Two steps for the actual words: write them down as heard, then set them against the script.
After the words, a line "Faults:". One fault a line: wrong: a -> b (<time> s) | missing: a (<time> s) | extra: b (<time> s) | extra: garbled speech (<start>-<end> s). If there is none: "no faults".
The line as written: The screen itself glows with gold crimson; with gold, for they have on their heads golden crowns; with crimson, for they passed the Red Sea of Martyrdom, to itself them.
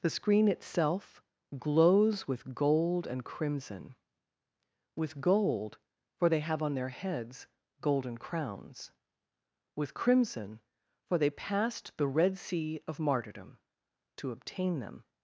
The screen itself glows with gold and crimson; with gold, for they have on their heads golden crowns; with crimson, for they passed the Red Sea of Martyrdom, to obtain them.
Faults:
extra: and (3.1 s)
wrong: itself -> obtain (14.3 s)